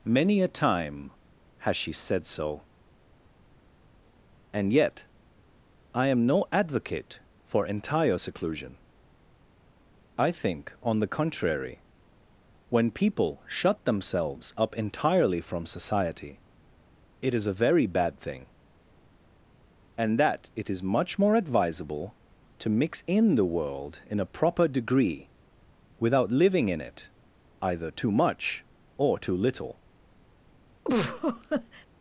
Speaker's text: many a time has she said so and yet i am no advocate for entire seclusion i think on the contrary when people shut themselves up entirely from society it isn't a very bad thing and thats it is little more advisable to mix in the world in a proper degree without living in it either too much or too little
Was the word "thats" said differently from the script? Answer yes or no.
yes